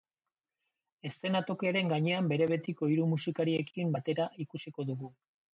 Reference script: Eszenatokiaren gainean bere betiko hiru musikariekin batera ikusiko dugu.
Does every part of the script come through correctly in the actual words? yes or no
yes